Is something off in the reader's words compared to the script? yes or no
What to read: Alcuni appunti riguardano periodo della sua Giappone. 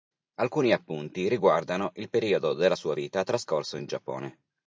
yes